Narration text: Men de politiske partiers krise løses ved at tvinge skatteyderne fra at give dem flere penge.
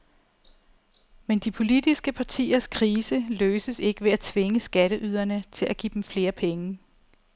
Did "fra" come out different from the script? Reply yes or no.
yes